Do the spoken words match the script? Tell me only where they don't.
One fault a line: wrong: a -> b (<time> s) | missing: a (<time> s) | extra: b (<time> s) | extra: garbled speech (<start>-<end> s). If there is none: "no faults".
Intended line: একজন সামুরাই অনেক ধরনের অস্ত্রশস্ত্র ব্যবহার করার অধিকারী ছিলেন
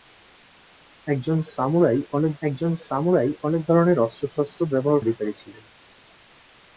extra: একজন সামুরাই অনেক (2.4 s)
missing: করার (5.0 s)